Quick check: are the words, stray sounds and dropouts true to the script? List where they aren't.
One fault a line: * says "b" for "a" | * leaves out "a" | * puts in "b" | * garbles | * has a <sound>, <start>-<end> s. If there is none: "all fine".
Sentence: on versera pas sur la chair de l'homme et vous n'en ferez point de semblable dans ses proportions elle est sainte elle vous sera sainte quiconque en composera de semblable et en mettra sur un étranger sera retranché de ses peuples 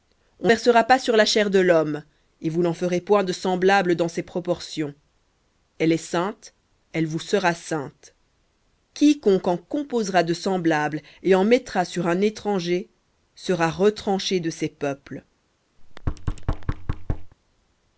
* has a thud, 15.8-17.3 s